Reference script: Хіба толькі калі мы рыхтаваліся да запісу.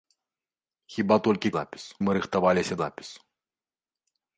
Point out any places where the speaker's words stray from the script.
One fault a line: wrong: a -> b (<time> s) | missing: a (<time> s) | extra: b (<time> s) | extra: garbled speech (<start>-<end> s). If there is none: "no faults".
wrong: калі -> запісу (1.6 s)
missing: да (2.7 s)